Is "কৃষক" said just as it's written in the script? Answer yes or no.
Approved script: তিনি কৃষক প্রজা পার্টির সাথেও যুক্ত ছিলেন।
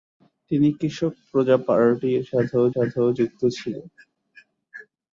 yes